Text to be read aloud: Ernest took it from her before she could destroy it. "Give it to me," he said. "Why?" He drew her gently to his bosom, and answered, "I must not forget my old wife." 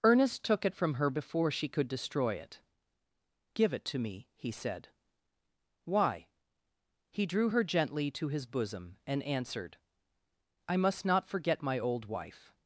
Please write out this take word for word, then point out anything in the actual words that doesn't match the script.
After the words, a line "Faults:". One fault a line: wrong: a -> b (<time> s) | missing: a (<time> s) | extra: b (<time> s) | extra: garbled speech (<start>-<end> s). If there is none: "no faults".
Ernest took it from her before she could destroy it. "Give it to me," he said. "Why?" He drew her gently to his bosom, and answered, "I must not forget my old wife."
Faults:
no faults